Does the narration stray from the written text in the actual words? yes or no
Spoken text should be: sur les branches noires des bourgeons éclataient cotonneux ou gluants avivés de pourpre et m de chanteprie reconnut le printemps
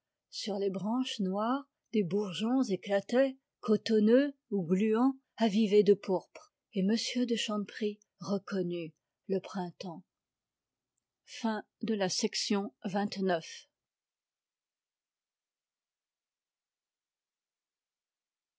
no